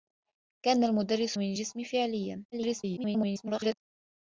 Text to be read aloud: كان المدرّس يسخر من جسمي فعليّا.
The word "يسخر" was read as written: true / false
false